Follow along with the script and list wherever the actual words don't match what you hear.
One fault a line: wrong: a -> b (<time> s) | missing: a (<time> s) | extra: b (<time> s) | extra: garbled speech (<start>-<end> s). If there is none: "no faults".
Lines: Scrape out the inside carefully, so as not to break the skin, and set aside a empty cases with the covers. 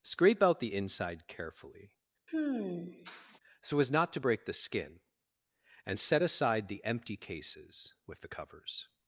wrong: a -> the (6.7 s)